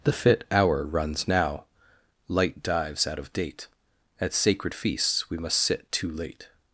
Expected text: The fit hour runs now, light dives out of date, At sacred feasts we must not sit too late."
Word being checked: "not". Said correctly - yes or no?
no